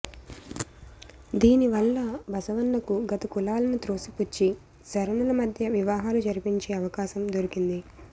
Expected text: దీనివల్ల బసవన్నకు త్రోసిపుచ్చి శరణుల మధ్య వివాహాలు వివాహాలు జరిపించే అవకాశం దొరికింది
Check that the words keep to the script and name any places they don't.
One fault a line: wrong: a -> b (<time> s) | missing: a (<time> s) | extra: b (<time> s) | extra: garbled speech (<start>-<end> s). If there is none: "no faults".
extra: గత కులాలను (3.1 s)
missing: వివాహాలు (6.2 s)